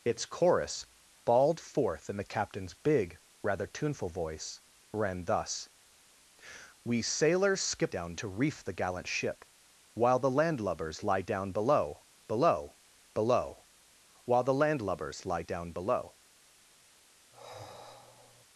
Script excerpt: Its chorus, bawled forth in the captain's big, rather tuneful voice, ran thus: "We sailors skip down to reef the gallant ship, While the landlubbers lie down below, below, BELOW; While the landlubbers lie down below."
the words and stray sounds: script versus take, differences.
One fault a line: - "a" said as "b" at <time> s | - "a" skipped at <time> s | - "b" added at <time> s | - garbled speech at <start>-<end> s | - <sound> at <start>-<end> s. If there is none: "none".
- sigh at 17.3-18.4 s